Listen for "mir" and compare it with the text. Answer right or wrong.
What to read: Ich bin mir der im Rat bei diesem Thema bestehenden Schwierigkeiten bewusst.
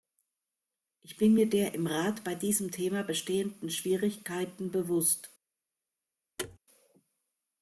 right